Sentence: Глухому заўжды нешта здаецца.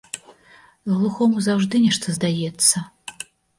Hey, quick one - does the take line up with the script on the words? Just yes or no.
yes